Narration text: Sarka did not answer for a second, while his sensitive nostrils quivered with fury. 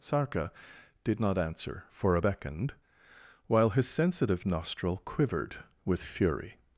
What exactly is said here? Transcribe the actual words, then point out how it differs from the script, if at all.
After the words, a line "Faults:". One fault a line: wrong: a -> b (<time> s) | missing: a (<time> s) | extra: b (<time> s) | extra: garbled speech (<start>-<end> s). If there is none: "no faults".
Sarka did not answer for a beckoned, while his sensitive nostril quivered with fury.
Faults:
wrong: second -> beckoned (2.2 s)
wrong: nostrils -> nostril (4.5 s)